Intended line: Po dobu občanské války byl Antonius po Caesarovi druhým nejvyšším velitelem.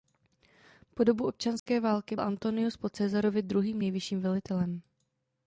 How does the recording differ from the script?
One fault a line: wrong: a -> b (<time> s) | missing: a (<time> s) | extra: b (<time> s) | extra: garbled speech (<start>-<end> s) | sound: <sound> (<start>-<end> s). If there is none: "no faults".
sound: dropout (1.6-1.7 s)
missing: byl (2.1 s)